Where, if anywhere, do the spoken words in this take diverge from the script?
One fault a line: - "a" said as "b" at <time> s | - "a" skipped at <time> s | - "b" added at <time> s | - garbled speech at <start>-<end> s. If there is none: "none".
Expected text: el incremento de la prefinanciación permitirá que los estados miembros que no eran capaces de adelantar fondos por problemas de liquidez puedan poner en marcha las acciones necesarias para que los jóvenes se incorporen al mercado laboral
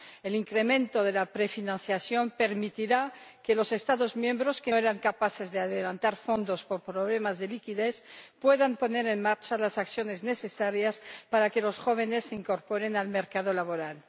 - "no" skipped at 4.7 s